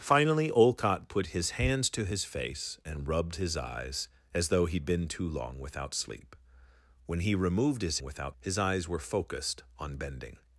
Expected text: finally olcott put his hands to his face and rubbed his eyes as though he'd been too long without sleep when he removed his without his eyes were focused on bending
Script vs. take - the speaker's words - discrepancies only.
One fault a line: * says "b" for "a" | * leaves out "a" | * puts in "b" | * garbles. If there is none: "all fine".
all fine